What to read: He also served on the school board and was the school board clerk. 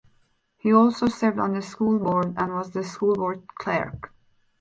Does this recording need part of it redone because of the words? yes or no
no